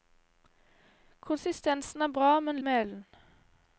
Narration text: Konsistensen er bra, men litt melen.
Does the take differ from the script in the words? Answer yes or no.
yes